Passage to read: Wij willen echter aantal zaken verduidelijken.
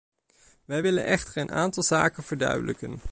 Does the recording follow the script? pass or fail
fail